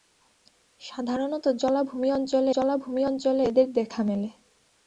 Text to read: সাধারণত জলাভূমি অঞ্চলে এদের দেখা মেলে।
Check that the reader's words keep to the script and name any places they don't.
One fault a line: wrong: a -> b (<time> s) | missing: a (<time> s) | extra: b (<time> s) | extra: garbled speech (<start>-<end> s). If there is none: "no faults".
extra: জলাভূমি অঞ্চলে (2.5 s)